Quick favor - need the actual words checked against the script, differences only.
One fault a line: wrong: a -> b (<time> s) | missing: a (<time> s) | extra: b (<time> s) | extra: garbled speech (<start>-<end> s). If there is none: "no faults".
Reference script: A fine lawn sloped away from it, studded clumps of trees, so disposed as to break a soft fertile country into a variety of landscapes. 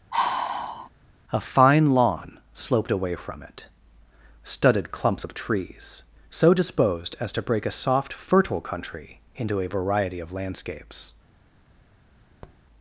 no faults